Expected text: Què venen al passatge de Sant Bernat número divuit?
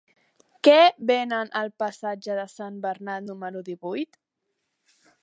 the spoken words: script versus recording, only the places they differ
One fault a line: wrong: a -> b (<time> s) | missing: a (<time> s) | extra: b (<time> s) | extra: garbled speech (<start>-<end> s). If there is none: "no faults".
no faults